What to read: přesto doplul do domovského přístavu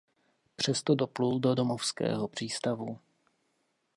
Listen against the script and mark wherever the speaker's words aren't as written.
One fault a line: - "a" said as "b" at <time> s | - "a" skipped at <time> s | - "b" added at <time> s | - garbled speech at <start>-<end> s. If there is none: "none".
none